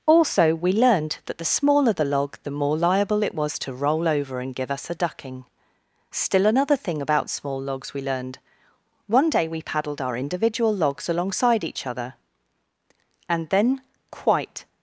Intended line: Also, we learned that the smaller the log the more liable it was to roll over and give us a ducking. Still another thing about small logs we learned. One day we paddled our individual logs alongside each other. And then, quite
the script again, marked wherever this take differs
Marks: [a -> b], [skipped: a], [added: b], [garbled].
Also, we learned that the smaller the log the more liable it was to roll over and give us a ducking. Still another thing about small logs we learned. One day we paddled our individual logs alongside each other. And then, quite